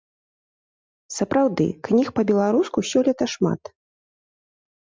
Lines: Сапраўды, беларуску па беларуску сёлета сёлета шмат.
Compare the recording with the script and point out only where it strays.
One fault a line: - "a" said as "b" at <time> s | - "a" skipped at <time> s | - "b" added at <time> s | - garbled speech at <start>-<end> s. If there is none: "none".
- "беларуску" said as "кніг" at 1.9 s
- "сёлета" skipped at 3.2 s